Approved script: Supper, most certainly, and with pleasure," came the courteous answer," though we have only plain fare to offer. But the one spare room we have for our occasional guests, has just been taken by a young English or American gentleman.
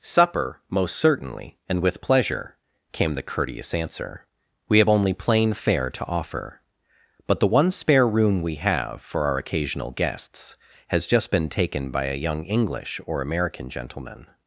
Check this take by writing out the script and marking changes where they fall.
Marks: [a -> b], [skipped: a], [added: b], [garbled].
Supper, most certainly, and with pleasure," came the courteous answer," [skipped: though] we have only plain fare to offer. But the one spare room we have for our occasional guests, has just been taken by a young English or American gentleman.